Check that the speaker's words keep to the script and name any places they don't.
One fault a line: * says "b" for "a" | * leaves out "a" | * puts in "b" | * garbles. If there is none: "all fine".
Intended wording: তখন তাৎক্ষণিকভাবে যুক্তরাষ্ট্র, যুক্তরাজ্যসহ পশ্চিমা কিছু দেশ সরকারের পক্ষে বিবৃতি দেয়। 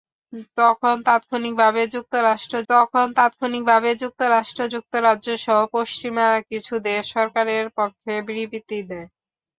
* puts in "তখন তাৎক্ষণিকভাবে যুক্তরাষ্ট্র"